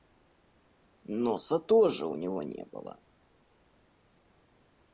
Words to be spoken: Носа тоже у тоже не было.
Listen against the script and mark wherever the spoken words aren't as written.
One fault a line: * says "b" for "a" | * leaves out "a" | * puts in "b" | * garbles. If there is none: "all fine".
* says "него" for "тоже"